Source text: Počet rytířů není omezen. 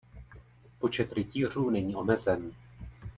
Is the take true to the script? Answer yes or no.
yes